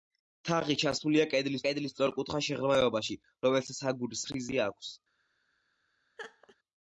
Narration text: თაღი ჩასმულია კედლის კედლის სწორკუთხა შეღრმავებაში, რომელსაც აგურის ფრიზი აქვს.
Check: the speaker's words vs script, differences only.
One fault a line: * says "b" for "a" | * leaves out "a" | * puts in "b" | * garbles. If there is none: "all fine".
all fine